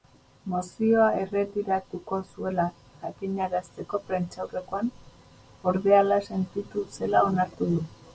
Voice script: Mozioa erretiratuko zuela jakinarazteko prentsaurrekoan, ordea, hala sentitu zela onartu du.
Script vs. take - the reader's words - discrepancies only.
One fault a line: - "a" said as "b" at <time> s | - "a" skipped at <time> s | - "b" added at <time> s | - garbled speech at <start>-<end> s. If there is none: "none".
none